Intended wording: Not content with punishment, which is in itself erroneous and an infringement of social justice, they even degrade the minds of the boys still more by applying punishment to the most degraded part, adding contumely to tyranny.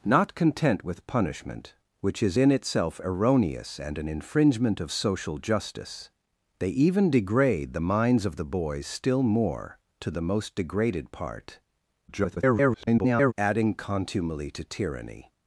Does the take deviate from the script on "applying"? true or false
true